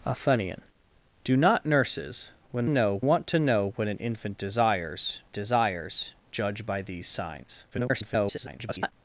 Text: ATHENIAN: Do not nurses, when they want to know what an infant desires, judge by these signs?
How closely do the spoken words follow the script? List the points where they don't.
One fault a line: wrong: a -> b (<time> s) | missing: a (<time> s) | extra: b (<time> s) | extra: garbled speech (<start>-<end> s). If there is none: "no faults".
wrong: they -> know (2.7 s)
extra: desires (5.3 s)
extra: garbled speech (7.7-8.9 s)